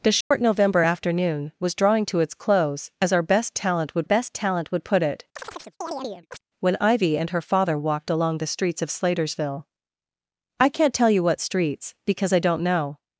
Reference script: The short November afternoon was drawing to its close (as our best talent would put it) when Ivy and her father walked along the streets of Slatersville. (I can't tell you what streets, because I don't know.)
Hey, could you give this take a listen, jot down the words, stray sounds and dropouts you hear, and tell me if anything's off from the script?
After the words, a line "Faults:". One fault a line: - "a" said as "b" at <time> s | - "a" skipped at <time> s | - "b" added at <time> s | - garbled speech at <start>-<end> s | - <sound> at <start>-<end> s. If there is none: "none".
The short November afternoon was drawing to its close (as our best talent would best talent would put it) when Ivy and her father walked along the streets of Slatersville. (I can't tell you what streets, because I don't know.)
Faults:
- dropout at 0.2-0.3 s
- "best talent would" added at 4.0 s
- chirp at 5.4-6.4 s